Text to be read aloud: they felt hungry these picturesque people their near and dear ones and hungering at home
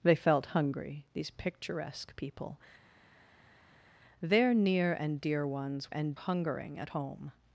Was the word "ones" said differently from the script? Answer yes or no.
no